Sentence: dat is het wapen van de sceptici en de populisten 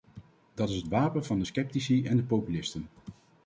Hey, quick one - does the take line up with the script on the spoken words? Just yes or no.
yes